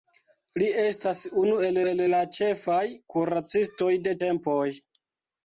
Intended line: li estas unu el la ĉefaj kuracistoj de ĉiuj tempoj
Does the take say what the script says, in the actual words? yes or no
no